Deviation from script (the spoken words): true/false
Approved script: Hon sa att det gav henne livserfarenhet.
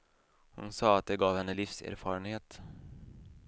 false